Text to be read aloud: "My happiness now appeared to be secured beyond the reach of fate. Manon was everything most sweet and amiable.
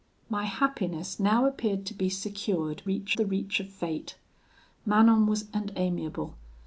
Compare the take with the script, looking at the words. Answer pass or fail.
fail